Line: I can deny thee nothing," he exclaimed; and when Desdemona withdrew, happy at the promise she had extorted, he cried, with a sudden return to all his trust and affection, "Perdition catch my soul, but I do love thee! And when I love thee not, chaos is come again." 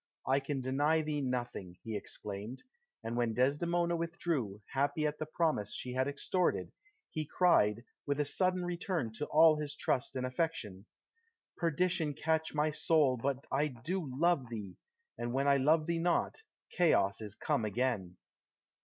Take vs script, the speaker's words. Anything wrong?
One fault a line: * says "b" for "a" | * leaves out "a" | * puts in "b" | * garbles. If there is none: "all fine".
all fine